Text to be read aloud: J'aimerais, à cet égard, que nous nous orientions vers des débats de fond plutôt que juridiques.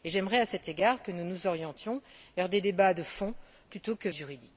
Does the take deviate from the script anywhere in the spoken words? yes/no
no